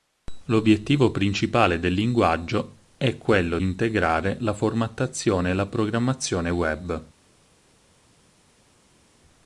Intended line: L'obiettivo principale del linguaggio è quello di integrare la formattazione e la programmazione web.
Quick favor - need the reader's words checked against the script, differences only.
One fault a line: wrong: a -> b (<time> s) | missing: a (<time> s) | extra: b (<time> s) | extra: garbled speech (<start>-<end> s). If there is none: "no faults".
missing: di (3.6 s)